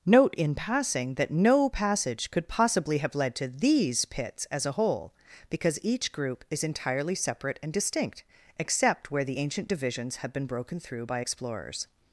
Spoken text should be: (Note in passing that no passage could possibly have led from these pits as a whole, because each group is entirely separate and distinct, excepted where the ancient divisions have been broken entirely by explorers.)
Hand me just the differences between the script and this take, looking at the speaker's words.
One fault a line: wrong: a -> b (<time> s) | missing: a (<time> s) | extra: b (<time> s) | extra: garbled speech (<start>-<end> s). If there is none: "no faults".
wrong: from -> to (3.4 s)
wrong: excepted -> except (8.6 s)
wrong: entirely -> through (10.8 s)